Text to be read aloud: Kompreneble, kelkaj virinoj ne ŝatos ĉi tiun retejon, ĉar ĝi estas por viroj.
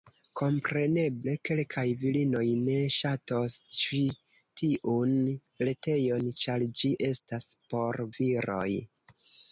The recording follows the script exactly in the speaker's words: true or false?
true